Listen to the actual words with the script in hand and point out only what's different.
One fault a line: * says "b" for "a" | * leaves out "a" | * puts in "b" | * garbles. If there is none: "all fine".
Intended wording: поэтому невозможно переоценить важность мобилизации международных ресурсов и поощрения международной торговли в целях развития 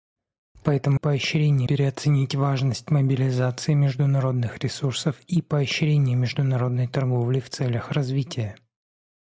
* says "поощрения" for "невозможно"